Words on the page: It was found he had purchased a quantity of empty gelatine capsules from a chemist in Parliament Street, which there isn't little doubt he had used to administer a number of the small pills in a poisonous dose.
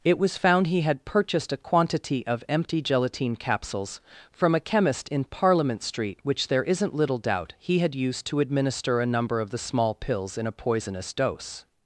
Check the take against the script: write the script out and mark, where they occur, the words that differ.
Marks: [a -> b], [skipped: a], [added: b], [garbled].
It was found he had purchased a quantity of empty gelatine capsules from a chemist in Parliament Street, which there isn't little doubt he had used to administer a number of the small pills in a poisonous dose.